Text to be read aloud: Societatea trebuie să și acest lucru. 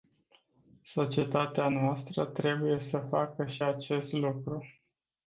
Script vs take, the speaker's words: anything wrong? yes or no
yes